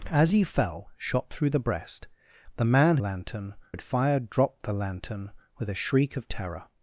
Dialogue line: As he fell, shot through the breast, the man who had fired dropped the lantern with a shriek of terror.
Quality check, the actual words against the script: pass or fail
fail